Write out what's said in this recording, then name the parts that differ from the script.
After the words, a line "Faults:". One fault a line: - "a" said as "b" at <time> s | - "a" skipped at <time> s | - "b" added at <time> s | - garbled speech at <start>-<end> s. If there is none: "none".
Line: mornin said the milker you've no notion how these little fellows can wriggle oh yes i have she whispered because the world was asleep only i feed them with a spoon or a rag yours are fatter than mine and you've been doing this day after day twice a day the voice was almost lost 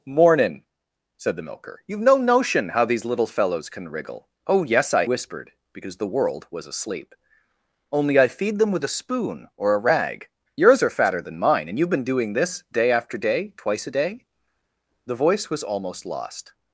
mornin said the milker you've no notion how these little fellows can wriggle oh yes i whispered because the world was asleep only i feed them with a spoon or a rag yours are fatter than mine and you've been doing this day after day twice a day the voice was almost lost
Faults:
- "have she" skipped at 5.0 s